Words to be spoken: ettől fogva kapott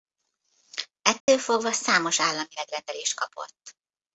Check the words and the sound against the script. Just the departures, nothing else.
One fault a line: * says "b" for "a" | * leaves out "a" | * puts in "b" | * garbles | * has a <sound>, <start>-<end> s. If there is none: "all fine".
* has a dropout, 1.2-1.3 s
* puts in "számos állami megrendelést"